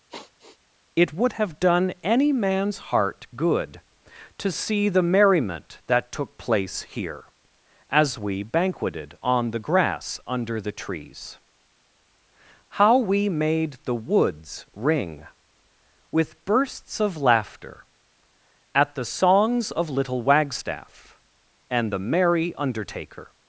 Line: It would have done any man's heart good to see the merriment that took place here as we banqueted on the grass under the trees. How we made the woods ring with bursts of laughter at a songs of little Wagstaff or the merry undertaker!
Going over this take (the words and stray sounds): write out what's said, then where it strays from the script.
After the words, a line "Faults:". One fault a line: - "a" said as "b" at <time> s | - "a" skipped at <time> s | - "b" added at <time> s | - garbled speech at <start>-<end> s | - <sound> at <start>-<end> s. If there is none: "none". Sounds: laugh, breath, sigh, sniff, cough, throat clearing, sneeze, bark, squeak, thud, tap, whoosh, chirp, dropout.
It would have done any man's heart good to see the merriment that took place here as we banqueted on the grass under the trees. How we made the woods ring with bursts of laughter at the songs of little Wagstaff and the merry undertaker!
Faults:
- sigh at 0.1-0.6 s
- "a" said as "the" at 18.9 s
- "or" said as "and" at 21.7 s